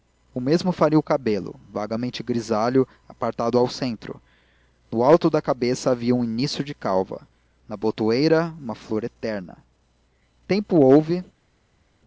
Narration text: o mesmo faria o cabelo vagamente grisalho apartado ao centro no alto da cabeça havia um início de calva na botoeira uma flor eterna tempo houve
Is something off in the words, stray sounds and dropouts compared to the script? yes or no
no